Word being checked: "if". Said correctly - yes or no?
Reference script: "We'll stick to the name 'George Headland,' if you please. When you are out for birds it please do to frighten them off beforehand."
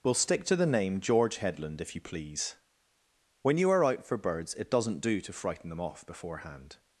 yes